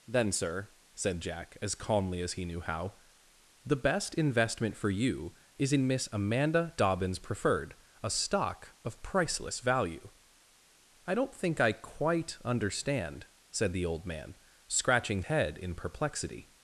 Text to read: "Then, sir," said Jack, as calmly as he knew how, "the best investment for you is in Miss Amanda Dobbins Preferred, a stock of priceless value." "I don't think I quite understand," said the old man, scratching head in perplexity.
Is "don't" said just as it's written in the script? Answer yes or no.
yes